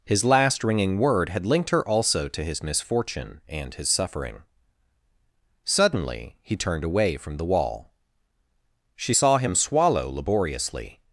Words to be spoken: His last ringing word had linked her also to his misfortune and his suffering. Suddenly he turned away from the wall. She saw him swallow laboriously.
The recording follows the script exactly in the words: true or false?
true